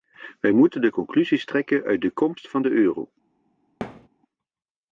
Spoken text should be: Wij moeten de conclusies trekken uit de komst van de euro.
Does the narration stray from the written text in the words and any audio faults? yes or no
yes